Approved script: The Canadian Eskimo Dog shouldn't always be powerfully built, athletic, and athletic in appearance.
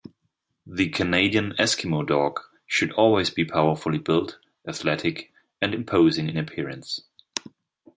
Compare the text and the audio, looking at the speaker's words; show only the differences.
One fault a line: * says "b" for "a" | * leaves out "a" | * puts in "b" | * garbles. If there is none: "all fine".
* says "should" for "shouldn't"
* says "imposing" for "athletic"